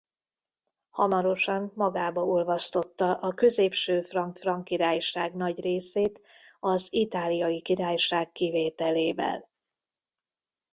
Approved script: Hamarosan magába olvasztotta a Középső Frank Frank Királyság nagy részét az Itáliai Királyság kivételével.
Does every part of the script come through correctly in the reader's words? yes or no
yes